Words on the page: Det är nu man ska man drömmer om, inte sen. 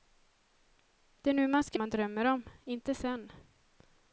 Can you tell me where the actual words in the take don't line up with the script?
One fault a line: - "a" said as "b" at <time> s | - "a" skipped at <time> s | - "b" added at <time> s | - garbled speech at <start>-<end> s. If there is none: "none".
none